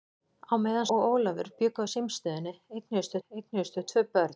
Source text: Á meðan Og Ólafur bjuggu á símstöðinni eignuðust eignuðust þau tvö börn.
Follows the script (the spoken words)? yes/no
yes